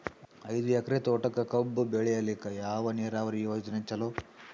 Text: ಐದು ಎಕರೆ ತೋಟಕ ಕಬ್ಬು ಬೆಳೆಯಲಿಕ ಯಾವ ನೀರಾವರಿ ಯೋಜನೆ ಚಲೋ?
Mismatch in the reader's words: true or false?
false